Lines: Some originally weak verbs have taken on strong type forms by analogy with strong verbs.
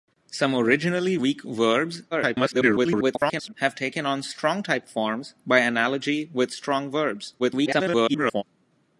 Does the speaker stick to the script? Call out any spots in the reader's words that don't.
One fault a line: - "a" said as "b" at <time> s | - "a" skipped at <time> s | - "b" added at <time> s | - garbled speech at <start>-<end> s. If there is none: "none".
- garbled speech at 2.1-3.5 s
- garbled speech at 7.4-8.4 s